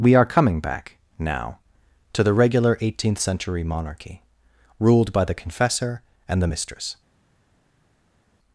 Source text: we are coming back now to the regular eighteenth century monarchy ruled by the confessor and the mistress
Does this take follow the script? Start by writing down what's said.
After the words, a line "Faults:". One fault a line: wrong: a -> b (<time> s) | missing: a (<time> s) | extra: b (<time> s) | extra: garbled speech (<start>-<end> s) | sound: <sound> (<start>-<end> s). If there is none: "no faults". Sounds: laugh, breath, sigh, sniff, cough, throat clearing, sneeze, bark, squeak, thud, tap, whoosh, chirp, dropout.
we are coming back now to the regular eighteenth century monarchy ruled by the confessor and the mistress
Faults:
no faults